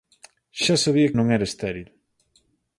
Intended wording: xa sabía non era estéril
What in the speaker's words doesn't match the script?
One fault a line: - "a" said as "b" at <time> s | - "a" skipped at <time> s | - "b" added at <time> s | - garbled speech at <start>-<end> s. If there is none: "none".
none